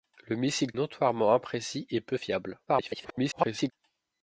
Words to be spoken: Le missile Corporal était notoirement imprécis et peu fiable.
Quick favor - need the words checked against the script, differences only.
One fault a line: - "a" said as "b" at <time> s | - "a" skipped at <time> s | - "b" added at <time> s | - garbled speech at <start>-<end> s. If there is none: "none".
- "Corporal était" skipped at 0.7 s
- garbled speech at 2.7-3.7 s